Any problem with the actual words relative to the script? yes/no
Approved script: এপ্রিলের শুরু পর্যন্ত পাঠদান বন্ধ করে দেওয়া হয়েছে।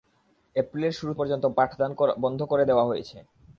no